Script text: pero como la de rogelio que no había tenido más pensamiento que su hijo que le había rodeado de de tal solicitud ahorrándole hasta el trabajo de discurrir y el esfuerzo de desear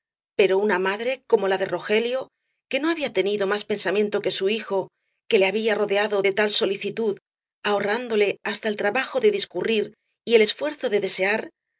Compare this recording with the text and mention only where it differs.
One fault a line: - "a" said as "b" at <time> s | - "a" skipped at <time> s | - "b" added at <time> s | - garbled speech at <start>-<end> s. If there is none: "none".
- "una madre" added at 0.6 s
- "de" skipped at 6.3 s